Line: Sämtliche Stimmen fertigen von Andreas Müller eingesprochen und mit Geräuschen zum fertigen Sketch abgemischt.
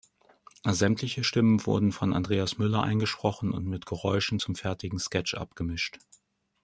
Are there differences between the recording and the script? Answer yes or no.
yes